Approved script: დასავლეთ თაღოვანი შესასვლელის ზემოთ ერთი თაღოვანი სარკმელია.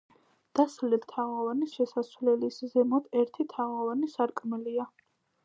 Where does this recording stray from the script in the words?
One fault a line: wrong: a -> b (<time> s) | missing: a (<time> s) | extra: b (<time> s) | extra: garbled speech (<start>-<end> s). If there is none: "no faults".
no faults